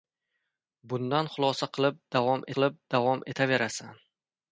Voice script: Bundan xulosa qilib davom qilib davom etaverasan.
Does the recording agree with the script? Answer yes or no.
yes